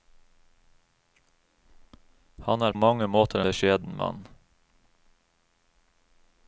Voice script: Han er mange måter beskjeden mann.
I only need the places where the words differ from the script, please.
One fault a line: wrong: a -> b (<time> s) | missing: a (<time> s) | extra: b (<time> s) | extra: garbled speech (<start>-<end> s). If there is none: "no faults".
no faults